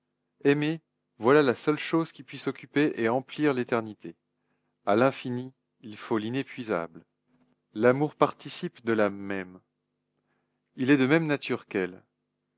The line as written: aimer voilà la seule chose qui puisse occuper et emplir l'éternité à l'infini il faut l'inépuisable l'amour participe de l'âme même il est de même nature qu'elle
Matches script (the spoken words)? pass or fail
pass